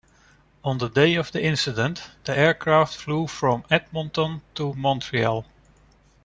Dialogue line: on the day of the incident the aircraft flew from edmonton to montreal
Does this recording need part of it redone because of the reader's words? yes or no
no